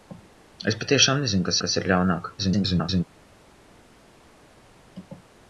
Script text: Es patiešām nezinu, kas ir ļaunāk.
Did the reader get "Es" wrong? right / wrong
right